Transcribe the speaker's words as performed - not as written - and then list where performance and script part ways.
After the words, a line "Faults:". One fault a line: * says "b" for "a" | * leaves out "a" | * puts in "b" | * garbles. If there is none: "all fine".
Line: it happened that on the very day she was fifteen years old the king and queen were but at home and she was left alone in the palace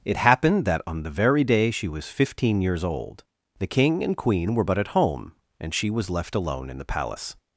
it happened that on the very day she was fifteen years old the king and queen were but at home and she was left alone in the palace
Faults:
all fine